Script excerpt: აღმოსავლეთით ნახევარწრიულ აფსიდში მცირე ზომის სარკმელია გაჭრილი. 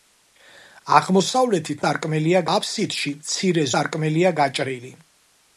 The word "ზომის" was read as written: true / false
false